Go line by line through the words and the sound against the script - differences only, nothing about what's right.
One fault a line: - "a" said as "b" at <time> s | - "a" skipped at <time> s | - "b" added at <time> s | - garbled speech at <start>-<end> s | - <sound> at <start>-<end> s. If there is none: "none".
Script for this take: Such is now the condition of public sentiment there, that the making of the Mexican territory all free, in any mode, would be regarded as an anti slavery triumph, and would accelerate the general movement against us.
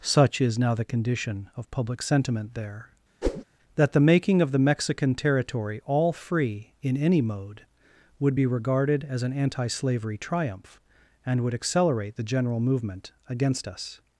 - whoosh at 3.2-3.4 s